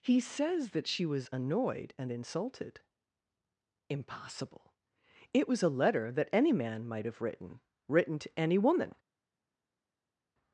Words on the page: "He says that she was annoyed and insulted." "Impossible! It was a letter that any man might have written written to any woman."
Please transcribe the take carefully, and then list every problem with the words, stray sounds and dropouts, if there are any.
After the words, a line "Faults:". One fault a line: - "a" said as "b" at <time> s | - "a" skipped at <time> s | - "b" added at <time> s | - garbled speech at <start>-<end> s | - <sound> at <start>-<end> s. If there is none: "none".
"He says that she was annoyed and insulted." "Impossible! It was a letter that any man might have written written to any woman."
Faults:
none